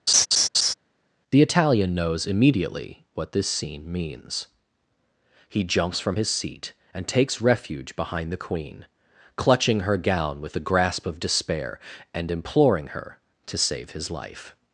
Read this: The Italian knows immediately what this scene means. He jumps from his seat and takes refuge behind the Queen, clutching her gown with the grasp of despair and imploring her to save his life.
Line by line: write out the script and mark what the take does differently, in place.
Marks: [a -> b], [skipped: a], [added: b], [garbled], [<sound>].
[laugh] The Italian knows immediately what this scene means. He jumps from his seat and takes refuge behind the Queen, clutching her gown with the grasp of despair and imploring her to save his life.